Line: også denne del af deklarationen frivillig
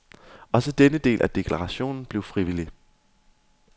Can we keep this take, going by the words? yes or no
no